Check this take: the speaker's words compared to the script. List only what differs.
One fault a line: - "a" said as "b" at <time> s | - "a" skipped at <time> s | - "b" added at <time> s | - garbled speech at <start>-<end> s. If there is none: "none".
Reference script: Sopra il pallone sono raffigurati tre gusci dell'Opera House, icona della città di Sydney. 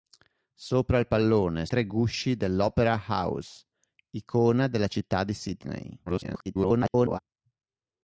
- "sono raffigurati" skipped at 1.7 s
- garbled speech at 6.1-7.2 s